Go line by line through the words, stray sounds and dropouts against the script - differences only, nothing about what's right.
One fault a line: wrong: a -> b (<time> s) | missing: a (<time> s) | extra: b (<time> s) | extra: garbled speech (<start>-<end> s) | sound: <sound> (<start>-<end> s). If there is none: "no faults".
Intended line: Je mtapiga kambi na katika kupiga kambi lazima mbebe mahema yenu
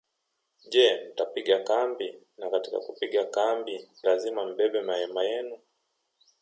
no faults